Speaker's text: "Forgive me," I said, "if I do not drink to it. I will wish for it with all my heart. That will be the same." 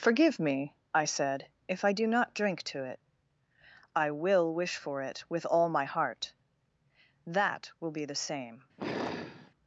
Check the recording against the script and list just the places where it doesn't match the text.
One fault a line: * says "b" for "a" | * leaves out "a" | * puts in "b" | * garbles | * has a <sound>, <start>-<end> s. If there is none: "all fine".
* has a sigh, 8.8-9.5 s